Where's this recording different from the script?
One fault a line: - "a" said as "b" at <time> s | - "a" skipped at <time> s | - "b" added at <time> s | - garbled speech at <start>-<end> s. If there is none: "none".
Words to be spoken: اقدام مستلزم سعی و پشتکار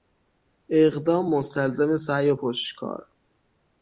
none